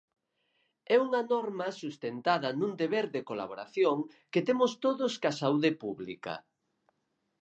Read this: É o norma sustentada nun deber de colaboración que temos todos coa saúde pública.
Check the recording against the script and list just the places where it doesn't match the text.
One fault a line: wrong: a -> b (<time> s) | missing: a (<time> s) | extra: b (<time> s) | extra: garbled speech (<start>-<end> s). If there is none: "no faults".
wrong: o -> unha (1.1 s)